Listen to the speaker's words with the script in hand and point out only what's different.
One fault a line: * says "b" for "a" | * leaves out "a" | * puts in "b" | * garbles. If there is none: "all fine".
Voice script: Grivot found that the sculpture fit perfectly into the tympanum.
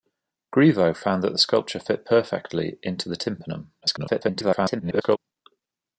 * garbles